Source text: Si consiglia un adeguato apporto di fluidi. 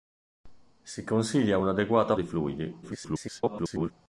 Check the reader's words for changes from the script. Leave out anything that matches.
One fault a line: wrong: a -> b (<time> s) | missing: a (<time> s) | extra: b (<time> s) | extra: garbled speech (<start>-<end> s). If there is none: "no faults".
missing: apporto (2.1 s)
extra: garbled speech (2.8-3.9 s)